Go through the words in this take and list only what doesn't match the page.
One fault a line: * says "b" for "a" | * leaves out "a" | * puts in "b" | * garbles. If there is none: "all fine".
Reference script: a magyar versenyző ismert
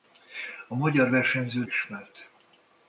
all fine